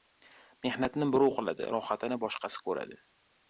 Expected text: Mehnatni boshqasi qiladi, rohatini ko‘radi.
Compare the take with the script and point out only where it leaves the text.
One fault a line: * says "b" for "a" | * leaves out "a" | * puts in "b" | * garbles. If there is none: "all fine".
* says "birov" for "boshqasi"
* puts in "boshqasi"